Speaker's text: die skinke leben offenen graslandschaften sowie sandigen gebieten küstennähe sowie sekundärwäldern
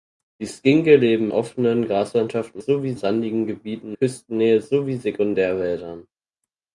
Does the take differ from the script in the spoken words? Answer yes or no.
no